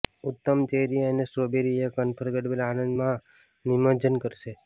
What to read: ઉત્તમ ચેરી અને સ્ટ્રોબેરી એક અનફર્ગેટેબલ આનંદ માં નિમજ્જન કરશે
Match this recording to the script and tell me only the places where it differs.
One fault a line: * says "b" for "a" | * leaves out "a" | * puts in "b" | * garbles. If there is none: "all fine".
all fine